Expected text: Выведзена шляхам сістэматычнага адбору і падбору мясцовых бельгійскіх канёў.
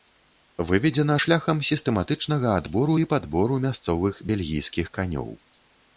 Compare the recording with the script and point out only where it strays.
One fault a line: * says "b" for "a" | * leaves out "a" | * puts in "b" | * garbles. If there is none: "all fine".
all fine